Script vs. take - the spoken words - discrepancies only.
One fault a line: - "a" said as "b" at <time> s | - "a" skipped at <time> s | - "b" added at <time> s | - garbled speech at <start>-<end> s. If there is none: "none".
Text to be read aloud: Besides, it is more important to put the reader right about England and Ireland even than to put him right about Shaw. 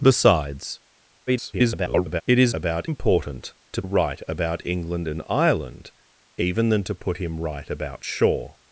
- garbled speech at 1.3-2.2 s
- "more" said as "about" at 2.5 s
- "put the reader" skipped at 3.8 s